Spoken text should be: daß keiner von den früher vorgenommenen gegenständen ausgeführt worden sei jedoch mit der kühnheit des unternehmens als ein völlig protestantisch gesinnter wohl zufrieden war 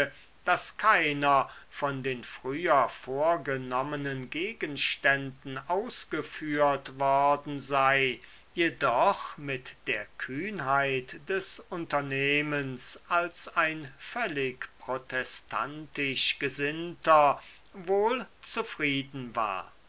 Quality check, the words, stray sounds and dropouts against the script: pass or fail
pass